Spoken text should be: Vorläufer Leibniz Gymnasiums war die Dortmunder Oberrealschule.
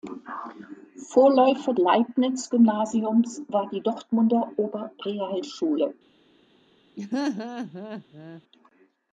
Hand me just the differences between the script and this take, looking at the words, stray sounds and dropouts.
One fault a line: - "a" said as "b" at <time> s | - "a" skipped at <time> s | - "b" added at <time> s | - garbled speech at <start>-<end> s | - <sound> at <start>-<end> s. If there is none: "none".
- laugh at 7.0-8.4 s